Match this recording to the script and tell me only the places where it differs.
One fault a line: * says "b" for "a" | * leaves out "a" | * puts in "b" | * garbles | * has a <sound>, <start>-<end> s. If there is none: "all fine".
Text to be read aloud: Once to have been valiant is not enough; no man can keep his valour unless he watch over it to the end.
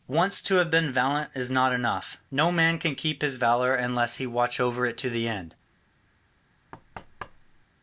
* has a thud, 6.7-7.6 s